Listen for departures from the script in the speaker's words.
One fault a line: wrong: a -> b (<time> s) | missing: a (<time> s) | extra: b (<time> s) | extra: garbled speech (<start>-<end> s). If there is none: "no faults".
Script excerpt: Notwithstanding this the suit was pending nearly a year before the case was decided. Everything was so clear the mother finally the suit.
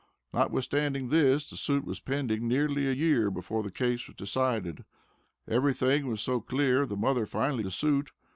no faults